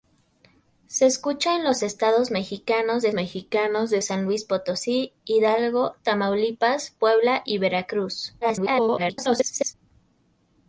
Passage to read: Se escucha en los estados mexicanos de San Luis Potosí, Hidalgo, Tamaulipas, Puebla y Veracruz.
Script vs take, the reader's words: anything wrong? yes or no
yes